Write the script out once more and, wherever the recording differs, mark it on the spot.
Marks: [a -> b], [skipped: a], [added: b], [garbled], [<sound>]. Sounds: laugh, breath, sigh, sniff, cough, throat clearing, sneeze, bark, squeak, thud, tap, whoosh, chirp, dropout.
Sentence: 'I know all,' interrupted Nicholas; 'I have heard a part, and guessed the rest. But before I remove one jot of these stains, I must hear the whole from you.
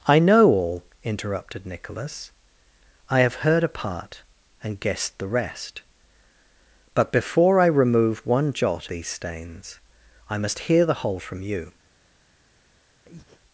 'I know all,' interrupted Nicholas; 'I have heard a part, and guessed the rest. But before I remove one jot [skipped: of] these stains, I must hear the whole from you. [breath]